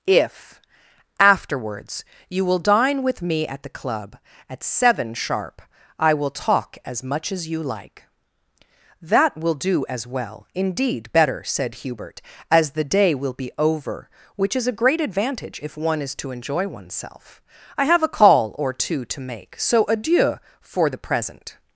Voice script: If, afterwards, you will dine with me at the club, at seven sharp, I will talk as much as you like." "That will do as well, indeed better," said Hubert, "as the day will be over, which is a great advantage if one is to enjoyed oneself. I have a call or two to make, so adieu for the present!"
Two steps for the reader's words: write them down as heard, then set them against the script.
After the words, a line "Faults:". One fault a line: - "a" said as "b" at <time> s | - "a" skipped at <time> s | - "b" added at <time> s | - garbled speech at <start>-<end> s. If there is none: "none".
If, afterwards, you will dine with me at the club, at seven sharp, I will talk as much as you like." "That will do as well, indeed better," said Hubert, "as the day will be over, which is a great advantage if one is to enjoy oneself. I have a call or two to make, so adieu for the present!"
Faults:
- "enjoyed" said as "enjoy" at 16.3 s